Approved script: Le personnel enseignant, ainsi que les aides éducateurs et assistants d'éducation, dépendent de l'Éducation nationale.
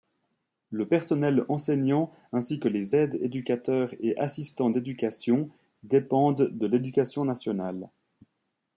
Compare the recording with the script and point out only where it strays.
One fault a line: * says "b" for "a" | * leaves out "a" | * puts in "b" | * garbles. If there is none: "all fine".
all fine